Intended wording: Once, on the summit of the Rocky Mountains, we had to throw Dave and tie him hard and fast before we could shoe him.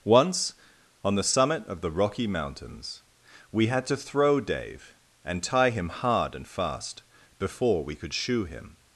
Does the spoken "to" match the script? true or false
true